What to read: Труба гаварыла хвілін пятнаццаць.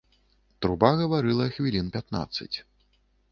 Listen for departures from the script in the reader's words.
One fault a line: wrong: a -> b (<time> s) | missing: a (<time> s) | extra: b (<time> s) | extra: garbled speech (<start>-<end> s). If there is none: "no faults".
no faults